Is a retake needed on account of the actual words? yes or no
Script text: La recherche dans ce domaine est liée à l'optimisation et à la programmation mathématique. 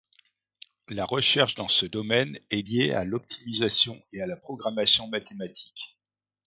no